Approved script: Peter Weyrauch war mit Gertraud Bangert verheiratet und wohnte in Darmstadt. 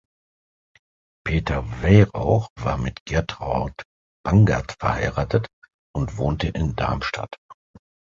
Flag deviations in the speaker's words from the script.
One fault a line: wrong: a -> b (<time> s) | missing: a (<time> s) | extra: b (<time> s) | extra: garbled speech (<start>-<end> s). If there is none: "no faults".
no faults